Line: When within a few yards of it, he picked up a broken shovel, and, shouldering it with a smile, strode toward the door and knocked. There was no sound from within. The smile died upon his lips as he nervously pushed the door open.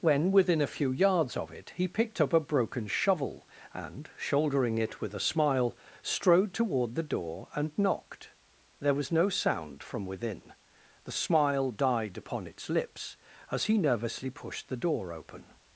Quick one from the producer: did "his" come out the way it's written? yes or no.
no